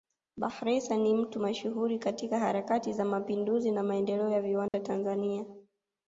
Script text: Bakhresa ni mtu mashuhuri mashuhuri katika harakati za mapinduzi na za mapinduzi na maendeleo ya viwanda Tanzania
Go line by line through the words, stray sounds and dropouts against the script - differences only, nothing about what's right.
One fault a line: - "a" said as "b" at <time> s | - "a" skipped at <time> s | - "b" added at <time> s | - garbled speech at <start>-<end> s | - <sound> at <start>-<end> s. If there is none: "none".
- "mashuhuri" skipped at 2.0 s
- "za mapinduzi na" skipped at 3.8 s
- dropout at 4.7-4.7 s